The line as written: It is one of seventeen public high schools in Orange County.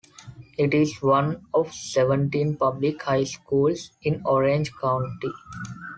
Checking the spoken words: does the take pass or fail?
pass